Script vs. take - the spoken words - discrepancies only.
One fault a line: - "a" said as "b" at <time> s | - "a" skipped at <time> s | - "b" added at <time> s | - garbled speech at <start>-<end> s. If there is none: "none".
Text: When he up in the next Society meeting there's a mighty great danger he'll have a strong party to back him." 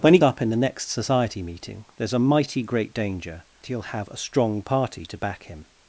none